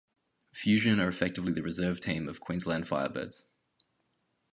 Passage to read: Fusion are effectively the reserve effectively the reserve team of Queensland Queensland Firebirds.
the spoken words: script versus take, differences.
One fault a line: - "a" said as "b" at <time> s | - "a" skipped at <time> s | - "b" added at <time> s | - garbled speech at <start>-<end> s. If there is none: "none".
- "effectively the reserve" skipped at 2.0 s
- "Queensland" skipped at 2.8 s